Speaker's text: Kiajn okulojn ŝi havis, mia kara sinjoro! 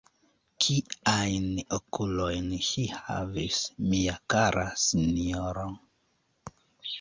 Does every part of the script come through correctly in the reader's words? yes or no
yes